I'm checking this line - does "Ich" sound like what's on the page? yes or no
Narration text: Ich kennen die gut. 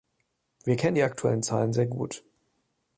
no